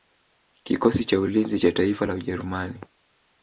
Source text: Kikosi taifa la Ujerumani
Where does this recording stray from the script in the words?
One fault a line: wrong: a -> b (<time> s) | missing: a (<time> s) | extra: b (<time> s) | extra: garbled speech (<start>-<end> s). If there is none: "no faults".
extra: cha ulinzi cha (1.1 s)